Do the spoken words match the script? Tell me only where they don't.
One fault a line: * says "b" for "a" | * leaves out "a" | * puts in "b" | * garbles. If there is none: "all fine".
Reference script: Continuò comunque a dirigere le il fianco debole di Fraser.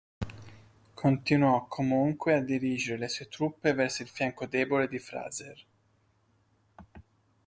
* puts in "sue truppe verso"